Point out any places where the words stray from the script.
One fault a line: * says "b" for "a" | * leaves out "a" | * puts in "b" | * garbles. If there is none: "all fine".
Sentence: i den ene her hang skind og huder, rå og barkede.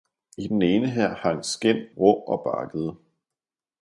* leaves out "og huder"